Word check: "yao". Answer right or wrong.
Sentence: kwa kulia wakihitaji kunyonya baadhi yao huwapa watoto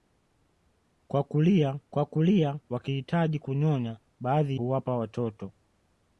wrong